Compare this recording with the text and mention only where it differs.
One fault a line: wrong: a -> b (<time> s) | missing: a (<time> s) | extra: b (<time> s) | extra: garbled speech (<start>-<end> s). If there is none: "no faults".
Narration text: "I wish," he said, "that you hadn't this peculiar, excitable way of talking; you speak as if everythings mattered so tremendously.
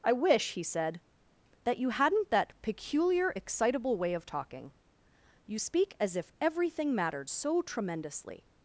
wrong: this -> that (2.3 s)
wrong: everythings -> everything (6.4 s)